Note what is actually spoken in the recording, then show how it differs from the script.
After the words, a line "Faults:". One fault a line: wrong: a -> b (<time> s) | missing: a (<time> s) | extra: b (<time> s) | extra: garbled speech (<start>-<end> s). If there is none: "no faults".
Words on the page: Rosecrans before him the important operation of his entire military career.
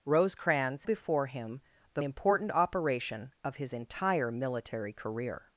Rosecrans before him the important operation of his entire military career.
Faults:
no faults